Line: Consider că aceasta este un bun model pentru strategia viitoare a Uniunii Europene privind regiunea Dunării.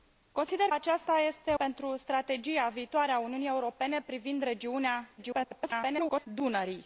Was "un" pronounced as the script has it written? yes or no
no